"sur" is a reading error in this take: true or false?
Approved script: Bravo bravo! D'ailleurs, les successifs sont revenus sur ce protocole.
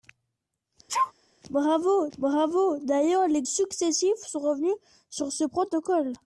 false